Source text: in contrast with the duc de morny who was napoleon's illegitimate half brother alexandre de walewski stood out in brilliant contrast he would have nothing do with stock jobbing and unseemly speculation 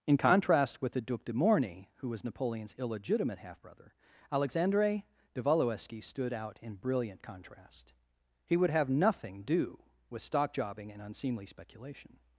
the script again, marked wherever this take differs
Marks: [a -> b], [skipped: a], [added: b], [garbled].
in contrast with the duc de morny who was napoleon's illegitimate half brother alexandre de walewski stood out in brilliant contrast he would have nothing do with stock jobbing and unseemly speculation